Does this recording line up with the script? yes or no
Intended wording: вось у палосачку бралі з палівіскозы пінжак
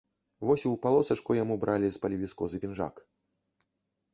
no